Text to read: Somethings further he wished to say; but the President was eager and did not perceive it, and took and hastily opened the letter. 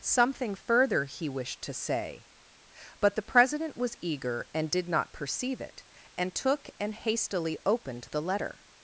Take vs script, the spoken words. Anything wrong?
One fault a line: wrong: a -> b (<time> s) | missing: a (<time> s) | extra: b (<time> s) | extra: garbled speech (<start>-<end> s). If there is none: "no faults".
wrong: Somethings -> Something (0.0 s)